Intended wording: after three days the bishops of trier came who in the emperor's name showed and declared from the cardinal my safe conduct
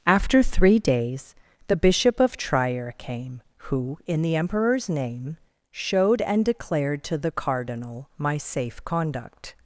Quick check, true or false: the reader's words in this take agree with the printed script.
false